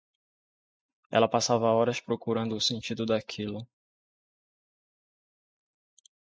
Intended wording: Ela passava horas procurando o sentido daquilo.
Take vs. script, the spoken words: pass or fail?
pass